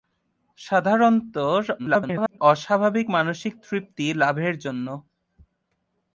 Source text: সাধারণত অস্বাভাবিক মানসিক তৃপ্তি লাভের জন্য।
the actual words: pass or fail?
fail